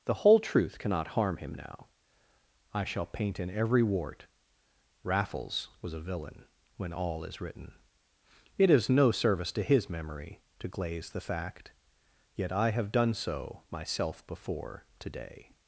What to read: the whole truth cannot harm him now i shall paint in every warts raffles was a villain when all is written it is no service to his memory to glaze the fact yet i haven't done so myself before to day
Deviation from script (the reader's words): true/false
true